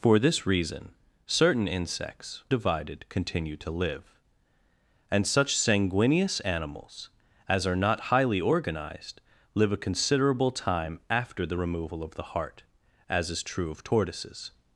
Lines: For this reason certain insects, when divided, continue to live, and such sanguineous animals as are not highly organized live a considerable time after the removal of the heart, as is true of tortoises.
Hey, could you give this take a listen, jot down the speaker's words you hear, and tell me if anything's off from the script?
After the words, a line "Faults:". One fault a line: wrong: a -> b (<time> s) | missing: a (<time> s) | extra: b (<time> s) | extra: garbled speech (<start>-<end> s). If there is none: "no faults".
For this reason certain insects, divided, continue to live, and such sanguineous animals as are not highly organized live a considerable time after the removal of the heart, as is true of tortoises.
Faults:
missing: when (2.4 s)